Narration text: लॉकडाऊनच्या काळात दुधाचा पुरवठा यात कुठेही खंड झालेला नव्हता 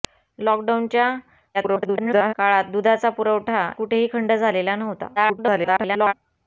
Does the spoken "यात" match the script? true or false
false